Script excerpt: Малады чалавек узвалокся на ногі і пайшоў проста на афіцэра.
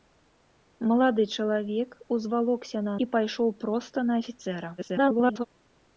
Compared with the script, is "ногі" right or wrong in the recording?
wrong